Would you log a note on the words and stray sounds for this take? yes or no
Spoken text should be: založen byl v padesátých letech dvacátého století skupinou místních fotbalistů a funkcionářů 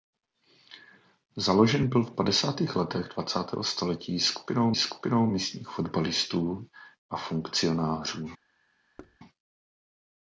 yes